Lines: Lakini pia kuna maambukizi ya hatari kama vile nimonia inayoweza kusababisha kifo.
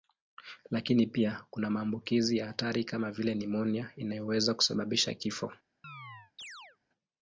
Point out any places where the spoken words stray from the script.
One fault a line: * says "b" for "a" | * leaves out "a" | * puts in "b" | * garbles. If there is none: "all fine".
all fine